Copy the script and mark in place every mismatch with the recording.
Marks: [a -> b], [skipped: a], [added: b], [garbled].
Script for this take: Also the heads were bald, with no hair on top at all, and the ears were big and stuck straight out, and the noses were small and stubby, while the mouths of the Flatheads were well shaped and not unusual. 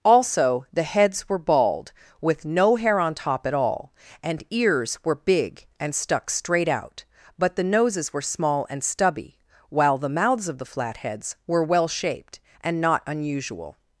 Also the heads were bald, with no hair on top at all, and [skipped: the] ears were big and stuck straight out, [and -> but] the noses were small and stubby, while the mouths of the Flatheads were well shaped and not unusual.